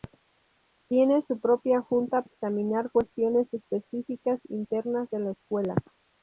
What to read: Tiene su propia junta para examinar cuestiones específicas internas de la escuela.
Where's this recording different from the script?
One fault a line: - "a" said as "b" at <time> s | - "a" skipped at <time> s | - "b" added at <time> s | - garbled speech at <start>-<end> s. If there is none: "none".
- "para" skipped at 2.2 s